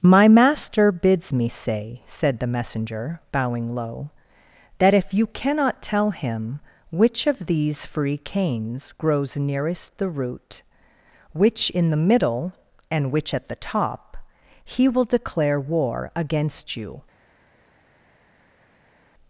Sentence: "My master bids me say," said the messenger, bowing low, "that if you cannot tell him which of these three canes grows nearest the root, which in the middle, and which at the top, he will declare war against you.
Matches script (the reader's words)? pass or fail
fail